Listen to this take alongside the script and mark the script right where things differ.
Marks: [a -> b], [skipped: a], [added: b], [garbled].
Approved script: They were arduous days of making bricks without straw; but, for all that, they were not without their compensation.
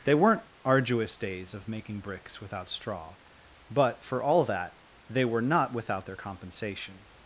They [were -> weren't] arduous days of making bricks without straw; but, for all that, they were not without their compensation.